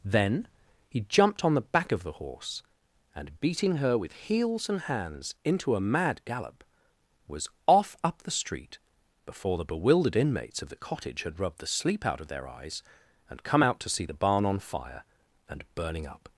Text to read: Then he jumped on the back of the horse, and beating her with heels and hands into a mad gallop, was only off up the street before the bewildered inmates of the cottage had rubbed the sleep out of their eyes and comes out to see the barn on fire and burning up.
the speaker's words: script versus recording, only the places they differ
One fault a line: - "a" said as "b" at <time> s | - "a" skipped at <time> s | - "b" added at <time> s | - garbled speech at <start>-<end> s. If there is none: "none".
- "only" skipped at 7.5 s
- "comes" said as "come" at 13.4 s